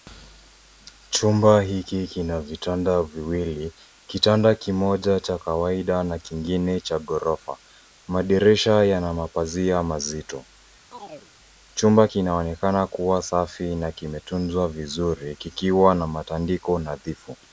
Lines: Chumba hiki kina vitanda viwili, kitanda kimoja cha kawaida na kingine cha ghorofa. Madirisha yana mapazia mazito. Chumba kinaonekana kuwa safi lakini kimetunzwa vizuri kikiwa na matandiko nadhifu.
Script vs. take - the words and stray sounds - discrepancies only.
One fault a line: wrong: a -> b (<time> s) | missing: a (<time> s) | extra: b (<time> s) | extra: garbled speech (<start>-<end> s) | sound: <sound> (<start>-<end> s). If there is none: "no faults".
sound: chirp (10.9-11.3 s)
wrong: lakini -> na (13.8 s)